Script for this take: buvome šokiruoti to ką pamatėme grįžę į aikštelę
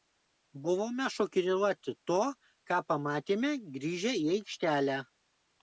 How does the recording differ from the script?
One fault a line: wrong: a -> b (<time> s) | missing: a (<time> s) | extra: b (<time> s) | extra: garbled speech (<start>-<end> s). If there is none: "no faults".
no faults